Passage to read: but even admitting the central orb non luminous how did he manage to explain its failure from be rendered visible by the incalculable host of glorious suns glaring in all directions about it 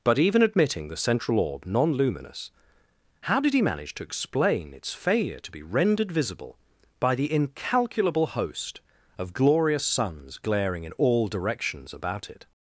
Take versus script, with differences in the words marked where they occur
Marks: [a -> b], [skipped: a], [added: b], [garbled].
but even admitting the central orb non luminous how did he manage to explain its failure [from -> to] be rendered visible by the incalculable host of glorious suns glaring in all directions about it